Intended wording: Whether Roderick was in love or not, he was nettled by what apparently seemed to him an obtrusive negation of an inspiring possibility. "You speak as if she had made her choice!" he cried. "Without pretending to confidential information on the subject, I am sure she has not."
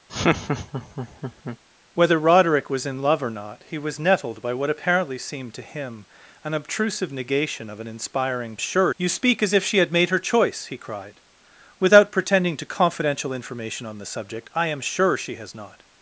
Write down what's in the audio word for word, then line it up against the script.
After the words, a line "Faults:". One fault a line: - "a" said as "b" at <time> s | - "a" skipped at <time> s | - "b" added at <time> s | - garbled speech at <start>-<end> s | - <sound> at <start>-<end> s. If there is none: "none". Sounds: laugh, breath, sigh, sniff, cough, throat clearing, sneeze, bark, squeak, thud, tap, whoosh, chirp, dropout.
Whether Roderick was in love or not, he was nettled by what apparently seemed to him an obtrusive negation of an inspiring sure. "You speak as if she had made her choice!" he cried. "Without pretending to confidential information on the subject, I am sure she has not."
Faults:
- laugh at 0.1-1.6 s
- "possibility" said as "sure" at 8.6 s